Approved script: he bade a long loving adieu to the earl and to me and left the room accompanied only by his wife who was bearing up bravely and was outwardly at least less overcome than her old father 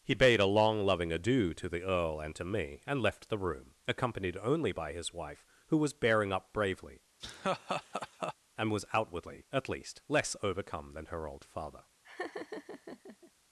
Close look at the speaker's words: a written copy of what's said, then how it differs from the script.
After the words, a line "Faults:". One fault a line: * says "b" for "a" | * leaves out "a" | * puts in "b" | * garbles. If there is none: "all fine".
he bade a long loving adieu to the earl and to me and left the room accompanied only by his wife who was bearing up bravely and was outwardly at least less overcome than her old father
Faults:
all fine